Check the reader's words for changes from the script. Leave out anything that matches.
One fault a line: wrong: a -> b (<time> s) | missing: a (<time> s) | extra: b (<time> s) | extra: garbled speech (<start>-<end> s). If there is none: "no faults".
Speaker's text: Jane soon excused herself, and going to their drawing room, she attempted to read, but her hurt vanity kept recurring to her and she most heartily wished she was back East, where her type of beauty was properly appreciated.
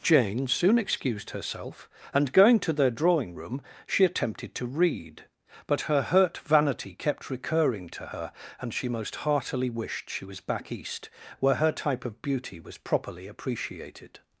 no faults